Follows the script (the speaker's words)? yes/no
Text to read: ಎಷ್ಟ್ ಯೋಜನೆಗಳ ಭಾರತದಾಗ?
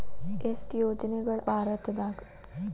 yes